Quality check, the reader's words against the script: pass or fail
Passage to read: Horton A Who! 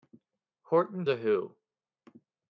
pass